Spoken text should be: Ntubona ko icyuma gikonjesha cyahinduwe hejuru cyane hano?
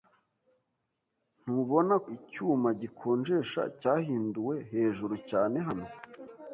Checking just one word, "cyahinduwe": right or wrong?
right